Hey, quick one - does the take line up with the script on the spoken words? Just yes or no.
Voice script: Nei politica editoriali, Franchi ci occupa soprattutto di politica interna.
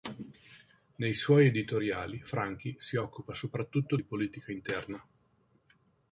no